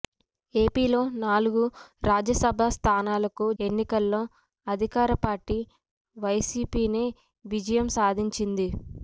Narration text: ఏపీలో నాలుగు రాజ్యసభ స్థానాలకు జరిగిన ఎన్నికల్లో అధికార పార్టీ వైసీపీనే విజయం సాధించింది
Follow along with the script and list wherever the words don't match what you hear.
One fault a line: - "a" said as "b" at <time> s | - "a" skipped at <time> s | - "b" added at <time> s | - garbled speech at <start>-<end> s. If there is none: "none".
- "జరిగిన" skipped at 3.5 s